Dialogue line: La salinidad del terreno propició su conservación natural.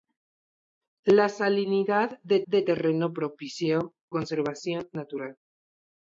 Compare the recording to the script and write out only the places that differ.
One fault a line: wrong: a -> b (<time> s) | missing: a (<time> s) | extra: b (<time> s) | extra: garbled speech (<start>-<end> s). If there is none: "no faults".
extra: del (2.5 s)
missing: su (3.9 s)